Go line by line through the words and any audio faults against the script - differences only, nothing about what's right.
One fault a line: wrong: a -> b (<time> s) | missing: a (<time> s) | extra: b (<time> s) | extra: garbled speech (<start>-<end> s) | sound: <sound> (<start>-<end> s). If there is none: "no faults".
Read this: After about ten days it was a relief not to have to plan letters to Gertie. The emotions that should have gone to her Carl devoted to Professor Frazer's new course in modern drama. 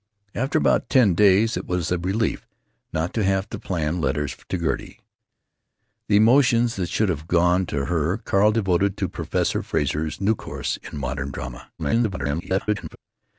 extra: garbled speech (11.8-13.0 s)